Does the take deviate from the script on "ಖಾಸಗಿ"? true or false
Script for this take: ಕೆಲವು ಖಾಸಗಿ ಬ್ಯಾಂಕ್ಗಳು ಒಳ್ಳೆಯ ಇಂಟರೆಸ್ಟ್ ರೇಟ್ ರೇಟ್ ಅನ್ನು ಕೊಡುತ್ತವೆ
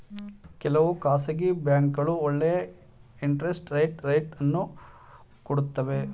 false